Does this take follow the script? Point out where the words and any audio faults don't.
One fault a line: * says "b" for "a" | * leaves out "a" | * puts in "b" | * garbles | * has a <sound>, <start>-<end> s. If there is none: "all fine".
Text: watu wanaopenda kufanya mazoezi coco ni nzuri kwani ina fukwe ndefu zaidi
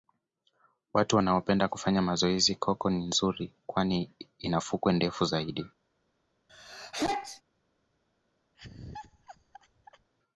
* has a sneeze, 6.5-7.4 s
* has a laugh, 8.5-10.1 s